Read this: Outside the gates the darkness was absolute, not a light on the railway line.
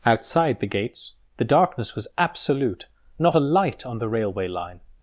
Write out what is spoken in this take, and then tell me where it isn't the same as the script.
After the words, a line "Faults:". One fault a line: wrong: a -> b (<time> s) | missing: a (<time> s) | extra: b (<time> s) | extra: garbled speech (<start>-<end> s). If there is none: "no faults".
Outside the gates the darkness was absolute, not a light on the railway line.
Faults:
no faults